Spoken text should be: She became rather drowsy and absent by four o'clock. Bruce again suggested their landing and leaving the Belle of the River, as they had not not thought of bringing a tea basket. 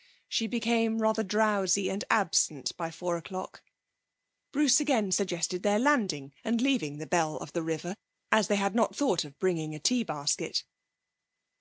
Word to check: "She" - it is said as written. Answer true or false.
true